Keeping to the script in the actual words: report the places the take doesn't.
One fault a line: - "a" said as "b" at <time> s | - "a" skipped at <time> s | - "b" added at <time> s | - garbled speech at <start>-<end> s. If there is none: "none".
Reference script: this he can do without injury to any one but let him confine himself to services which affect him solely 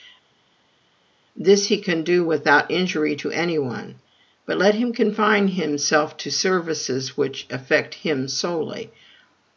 none